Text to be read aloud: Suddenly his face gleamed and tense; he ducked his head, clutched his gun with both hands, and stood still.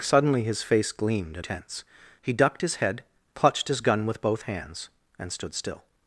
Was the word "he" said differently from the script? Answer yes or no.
no